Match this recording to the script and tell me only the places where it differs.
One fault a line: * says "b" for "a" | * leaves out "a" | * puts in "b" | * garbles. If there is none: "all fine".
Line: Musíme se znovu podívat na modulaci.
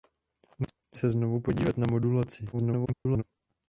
* garbles